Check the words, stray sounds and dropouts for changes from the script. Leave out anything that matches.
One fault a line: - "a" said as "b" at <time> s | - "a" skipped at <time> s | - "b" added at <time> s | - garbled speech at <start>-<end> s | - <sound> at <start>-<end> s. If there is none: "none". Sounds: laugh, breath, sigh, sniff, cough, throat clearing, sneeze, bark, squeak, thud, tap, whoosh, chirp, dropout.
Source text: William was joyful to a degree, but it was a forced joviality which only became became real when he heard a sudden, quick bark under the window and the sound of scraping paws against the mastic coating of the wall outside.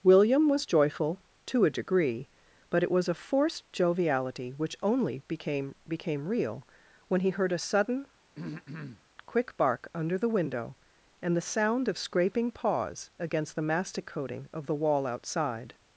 - throat clearing at 8.3-9.0 s